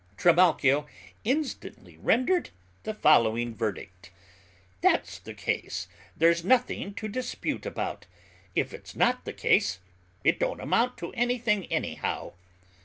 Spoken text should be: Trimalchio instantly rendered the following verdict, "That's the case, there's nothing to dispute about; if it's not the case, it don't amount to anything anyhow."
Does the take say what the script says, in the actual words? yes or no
yes